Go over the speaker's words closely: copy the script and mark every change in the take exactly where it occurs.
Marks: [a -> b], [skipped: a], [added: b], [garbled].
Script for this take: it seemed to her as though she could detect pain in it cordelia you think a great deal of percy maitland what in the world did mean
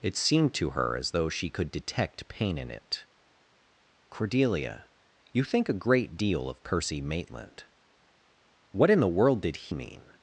it seemed to her as though she could detect pain in it cordelia you think a great deal of percy maitland what in the world did mean